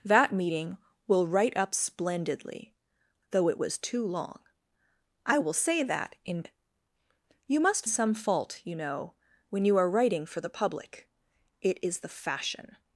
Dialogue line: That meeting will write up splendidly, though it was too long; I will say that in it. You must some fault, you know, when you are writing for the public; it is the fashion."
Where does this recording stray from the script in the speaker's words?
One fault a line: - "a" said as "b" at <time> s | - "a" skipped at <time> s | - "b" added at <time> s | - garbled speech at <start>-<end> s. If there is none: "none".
none